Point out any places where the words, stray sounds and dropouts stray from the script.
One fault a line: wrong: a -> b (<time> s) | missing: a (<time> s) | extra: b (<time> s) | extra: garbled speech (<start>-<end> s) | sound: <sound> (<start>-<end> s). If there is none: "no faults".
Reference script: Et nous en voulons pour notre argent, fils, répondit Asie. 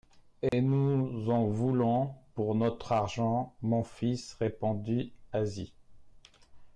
sound: dropout (0.5-0.5 s)
extra: mon (3.6 s)